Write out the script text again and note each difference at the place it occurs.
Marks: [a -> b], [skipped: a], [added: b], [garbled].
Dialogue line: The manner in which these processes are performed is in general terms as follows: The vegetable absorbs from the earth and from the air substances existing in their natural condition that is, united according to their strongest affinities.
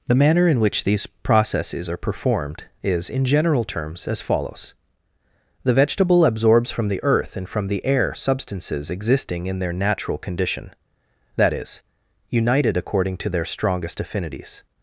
The manner in which these processes are performed is in general terms as follows: The vegetable absorbs from the earth and from the air substances existing in their natural condition that is, united according to their strongest affinities.